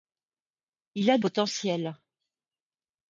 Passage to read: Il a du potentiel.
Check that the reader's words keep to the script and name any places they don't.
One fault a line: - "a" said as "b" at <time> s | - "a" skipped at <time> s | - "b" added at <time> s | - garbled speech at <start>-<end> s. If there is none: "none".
- "du" skipped at 1.2 s